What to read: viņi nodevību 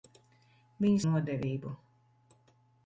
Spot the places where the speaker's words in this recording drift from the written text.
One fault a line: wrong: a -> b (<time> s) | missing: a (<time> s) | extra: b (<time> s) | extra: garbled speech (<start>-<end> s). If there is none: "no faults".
no faults